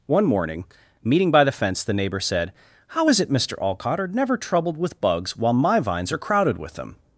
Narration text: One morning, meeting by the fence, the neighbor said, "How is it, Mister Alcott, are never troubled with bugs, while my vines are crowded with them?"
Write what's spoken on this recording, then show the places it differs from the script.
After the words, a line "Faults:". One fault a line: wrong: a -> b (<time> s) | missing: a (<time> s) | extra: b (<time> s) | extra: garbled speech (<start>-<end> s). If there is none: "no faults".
One morning, meeting by the fence, the neighbor said, "How is it, Mister Alcott, are never troubled with bugs, while my vines are crowded with them?"
Faults:
no faults